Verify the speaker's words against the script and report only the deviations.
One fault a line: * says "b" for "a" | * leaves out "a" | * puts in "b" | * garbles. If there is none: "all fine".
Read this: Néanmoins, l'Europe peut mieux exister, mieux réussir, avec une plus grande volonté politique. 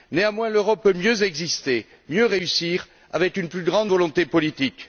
all fine